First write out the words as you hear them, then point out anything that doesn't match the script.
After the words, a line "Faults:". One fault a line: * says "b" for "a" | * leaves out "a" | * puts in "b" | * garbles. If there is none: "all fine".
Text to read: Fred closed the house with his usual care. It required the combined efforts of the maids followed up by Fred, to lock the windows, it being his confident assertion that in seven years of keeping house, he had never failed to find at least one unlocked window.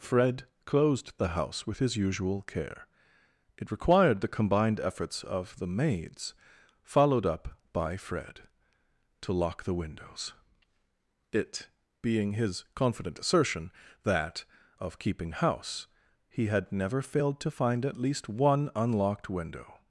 Fred closed the house with his usual care. It required the combined efforts of the maids followed up by Fred, to lock the windows, it being his confident assertion that of keeping house, he had never failed to find at least one unlocked window.
Faults:
* leaves out "in seven years"